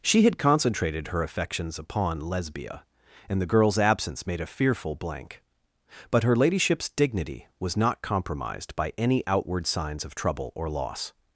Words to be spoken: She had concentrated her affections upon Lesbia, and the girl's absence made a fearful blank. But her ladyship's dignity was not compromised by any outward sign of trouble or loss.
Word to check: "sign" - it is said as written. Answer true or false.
false